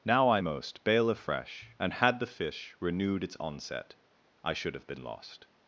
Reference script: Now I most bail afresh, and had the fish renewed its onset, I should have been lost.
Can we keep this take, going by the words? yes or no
yes